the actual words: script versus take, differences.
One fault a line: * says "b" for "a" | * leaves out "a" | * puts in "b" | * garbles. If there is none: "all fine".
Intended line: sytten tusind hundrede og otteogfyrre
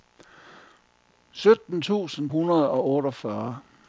all fine